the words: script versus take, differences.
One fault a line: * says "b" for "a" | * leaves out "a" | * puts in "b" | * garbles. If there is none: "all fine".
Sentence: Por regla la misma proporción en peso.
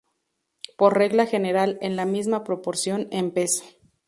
* puts in "general en"